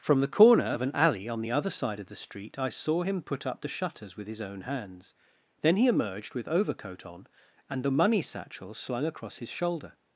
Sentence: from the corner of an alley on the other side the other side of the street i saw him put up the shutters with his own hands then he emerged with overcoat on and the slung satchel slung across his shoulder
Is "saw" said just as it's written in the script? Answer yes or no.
yes